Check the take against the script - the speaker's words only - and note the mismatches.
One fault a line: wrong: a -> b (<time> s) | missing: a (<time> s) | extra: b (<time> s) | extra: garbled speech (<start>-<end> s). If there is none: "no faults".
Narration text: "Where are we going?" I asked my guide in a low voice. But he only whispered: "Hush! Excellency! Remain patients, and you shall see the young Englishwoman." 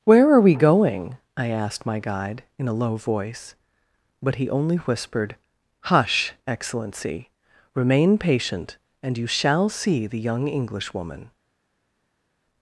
wrong: patients -> patient (8.2 s)